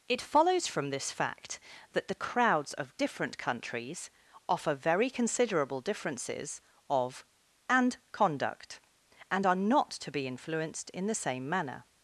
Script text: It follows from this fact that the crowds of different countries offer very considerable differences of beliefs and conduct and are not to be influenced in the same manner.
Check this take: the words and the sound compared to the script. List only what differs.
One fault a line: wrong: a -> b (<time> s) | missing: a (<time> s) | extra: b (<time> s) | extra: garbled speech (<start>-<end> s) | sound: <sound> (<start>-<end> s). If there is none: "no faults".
missing: beliefs (7.2 s)